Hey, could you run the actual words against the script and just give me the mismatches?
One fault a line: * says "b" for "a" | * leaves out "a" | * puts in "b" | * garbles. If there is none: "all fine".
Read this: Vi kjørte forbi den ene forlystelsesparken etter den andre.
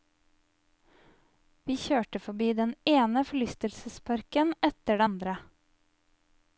* leaves out "den"